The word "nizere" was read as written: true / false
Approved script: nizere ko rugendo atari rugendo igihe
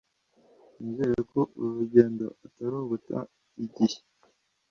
true